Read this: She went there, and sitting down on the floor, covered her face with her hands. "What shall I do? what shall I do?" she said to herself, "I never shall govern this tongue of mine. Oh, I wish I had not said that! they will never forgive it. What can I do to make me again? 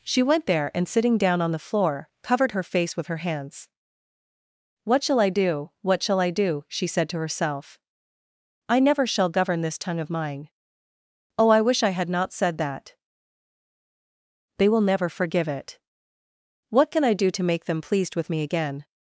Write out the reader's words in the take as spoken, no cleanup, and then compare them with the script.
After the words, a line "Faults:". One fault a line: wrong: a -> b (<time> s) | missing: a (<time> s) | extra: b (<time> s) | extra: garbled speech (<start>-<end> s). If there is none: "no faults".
She went there, and sitting down on the floor, covered her face with her hands. "What shall I do? what shall I do?" she said to herself, "I never shall govern this tongue of mine. Oh, I wish I had not said that! they will never forgive it. What can I do to make them pleased with me again?
Faults:
extra: them pleased with (17.7 s)